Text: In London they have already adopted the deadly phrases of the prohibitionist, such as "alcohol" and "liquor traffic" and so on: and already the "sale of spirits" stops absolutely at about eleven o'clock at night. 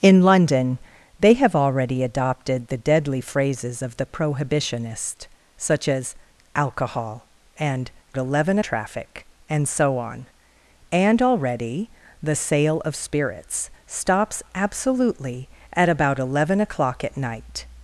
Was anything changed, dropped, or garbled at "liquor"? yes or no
yes